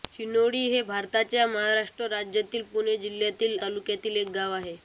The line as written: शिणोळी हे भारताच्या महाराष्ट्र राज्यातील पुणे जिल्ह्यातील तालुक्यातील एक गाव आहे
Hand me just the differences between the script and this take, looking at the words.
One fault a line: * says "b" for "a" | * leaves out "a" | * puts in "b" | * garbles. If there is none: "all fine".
all fine